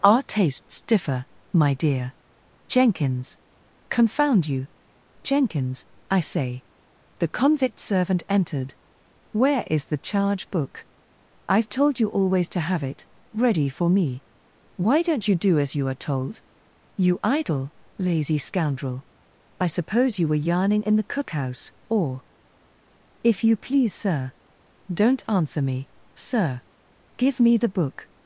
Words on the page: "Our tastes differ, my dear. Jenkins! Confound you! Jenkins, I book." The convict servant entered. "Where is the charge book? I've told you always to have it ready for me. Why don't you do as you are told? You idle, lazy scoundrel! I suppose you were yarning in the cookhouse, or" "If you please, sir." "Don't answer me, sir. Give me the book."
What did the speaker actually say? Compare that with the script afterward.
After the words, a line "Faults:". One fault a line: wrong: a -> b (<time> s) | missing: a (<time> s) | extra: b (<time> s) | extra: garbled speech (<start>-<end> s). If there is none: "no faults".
"Our tastes differ, my dear. Jenkins! Confound you! Jenkins, I say." The convict servant entered. "Where is the charge book? I've told you always to have it ready for me. Why don't you do as you are told? You idle, lazy scoundrel! I suppose you were yarning in the cookhouse, or" "If you please, sir." "Don't answer me, sir. Give me the book."
Faults:
wrong: book -> say (6.2 s)